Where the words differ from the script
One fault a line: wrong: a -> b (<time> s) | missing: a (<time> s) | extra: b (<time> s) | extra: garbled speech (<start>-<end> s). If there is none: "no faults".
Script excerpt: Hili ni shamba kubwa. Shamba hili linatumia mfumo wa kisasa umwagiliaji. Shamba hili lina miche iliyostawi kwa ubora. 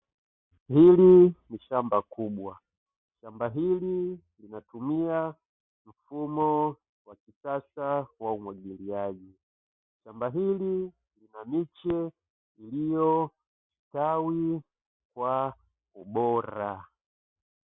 extra: wa (8.2 s)